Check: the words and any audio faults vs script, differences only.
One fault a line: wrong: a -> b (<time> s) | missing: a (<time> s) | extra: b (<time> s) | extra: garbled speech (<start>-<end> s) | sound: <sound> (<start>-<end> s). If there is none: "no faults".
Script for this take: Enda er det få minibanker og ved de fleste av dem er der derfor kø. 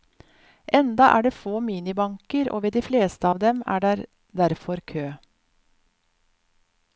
no faults